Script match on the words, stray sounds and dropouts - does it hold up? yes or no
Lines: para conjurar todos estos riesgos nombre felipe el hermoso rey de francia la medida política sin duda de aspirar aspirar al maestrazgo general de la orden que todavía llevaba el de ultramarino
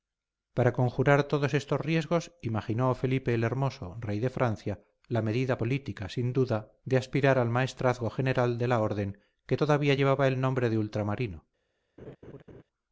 no